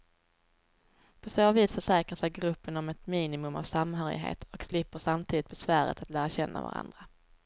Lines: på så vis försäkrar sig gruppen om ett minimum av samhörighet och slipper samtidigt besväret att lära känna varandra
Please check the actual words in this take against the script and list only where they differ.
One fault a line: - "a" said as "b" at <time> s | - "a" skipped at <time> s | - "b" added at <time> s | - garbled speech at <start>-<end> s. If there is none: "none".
none